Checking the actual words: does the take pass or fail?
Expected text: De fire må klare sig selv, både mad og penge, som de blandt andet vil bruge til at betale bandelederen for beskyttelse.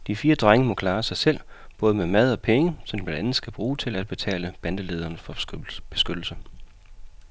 fail